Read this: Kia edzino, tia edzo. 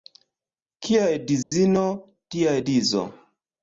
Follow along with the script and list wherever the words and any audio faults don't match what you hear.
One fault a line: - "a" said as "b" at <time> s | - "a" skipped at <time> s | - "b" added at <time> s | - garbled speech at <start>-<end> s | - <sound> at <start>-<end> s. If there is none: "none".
- dropout at 1.4-1.5 s